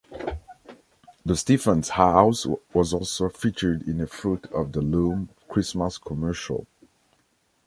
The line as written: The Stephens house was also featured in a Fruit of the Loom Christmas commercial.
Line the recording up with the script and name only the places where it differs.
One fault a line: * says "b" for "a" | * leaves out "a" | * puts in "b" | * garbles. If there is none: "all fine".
all fine